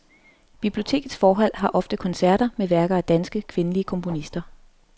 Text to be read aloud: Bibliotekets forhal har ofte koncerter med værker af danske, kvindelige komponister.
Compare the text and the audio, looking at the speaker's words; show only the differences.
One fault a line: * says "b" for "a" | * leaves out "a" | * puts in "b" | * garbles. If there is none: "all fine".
all fine